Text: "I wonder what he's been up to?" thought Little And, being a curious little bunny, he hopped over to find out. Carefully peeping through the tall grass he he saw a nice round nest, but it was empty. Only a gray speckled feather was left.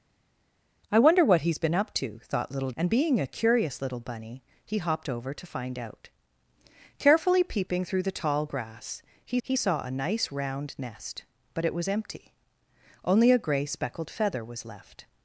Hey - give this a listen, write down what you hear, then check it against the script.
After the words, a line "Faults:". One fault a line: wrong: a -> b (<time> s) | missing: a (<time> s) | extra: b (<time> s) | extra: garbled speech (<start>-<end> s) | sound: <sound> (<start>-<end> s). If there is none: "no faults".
"I wonder what he's been up to?" thought Little And, being a curious little bunny, he hopped over to find out. Carefully peeping through the tall grass he he saw a nice round nest, but it was empty. Only a gray speckled feather was left.
Faults:
no faults